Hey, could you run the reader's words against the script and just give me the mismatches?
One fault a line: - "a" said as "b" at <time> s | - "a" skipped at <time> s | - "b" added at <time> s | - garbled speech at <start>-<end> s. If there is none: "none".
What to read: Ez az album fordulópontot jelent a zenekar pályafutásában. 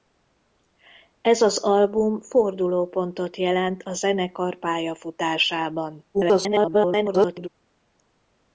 - garbled speech at 6.1-7.5 s